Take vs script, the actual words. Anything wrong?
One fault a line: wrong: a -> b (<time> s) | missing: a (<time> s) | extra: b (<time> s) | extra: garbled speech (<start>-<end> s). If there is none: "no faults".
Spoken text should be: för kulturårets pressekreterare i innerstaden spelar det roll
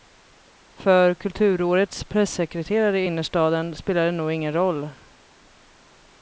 extra: nog ingen (4.1 s)